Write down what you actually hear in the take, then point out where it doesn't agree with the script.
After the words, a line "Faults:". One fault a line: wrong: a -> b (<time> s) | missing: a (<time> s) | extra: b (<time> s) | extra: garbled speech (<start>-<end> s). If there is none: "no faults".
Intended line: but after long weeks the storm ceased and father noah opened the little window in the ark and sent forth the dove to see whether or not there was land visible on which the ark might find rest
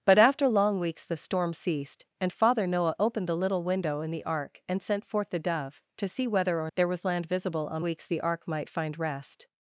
but after long weeks the storm ceased and father noah opened the little window in the ark and sent forth the dove to see whether or there was land visible on weeks the ark might find rest
Faults:
missing: not (6.7 s)
wrong: which -> weeks (7.8 s)